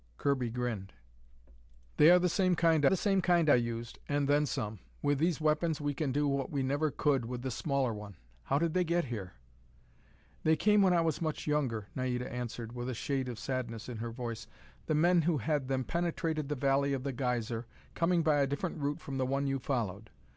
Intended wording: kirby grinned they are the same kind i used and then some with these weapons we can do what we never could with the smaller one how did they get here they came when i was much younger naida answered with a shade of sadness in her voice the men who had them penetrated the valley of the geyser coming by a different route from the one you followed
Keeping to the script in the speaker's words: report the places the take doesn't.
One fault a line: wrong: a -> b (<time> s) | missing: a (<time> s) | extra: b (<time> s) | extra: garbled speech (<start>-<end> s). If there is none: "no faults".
extra: the same kind (2.9 s)